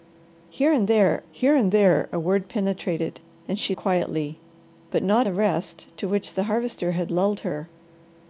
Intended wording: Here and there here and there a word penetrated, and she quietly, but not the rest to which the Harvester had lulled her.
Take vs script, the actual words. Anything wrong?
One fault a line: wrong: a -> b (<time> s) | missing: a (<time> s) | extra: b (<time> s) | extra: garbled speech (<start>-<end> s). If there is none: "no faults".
no faults